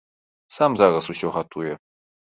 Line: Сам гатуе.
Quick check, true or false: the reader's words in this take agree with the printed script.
false